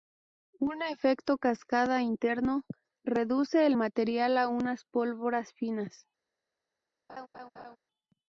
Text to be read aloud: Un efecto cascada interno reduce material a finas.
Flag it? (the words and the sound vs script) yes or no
yes